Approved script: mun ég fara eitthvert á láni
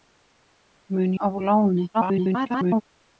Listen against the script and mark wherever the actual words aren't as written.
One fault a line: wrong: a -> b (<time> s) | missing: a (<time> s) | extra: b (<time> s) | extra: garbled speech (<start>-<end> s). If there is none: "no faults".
missing: ég fara eitthvert (1.1 s)
extra: garbled speech (1.9-2.8 s)